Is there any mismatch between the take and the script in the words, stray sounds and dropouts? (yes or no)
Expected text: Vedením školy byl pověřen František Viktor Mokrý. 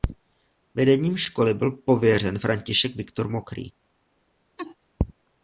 yes